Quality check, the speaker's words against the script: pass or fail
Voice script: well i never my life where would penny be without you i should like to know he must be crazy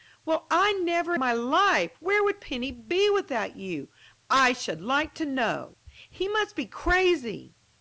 pass